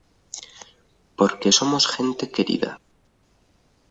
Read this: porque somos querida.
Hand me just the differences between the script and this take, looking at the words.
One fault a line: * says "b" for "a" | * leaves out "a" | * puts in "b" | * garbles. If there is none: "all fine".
* puts in "gente"